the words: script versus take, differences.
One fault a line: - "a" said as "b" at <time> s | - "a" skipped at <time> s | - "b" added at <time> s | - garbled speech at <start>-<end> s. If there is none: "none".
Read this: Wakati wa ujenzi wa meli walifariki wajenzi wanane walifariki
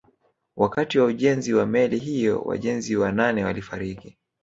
- "walifariki" said as "hiyo" at 2.0 s